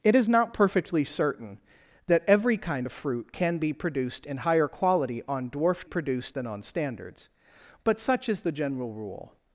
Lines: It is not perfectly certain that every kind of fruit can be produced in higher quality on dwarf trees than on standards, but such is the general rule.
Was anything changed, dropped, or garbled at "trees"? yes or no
yes